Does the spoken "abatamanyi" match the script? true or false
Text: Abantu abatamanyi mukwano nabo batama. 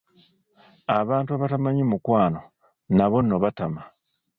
true